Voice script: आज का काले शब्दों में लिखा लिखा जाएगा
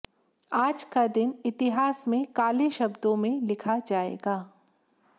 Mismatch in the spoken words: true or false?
true